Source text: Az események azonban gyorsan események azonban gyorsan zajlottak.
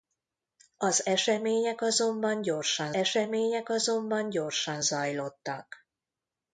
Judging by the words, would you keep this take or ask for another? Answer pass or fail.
pass